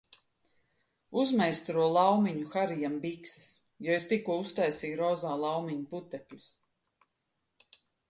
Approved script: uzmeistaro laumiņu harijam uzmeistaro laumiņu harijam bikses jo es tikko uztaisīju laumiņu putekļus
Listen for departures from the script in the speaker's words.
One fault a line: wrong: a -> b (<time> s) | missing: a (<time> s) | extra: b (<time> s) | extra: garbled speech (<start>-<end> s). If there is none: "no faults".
missing: uzmeistaro laumiņu harijam (3.0 s)
extra: rozā (5.0 s)